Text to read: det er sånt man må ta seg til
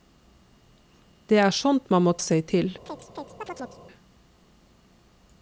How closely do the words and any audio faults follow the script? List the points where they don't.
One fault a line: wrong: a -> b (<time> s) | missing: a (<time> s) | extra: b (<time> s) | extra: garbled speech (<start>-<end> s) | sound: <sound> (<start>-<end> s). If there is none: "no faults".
missing: ta (2.1 s)
sound: chirp (2.9-3.8 s)